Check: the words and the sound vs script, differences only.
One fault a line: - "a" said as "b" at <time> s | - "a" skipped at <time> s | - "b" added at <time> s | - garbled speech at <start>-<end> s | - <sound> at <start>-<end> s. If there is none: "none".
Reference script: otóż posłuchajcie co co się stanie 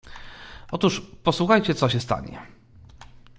- "co" skipped at 1.9 s